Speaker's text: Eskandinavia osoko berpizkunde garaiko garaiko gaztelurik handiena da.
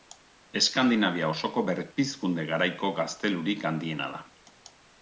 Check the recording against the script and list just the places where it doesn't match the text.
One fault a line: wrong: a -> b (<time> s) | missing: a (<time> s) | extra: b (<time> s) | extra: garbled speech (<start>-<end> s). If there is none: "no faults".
missing: garaiko (2.9 s)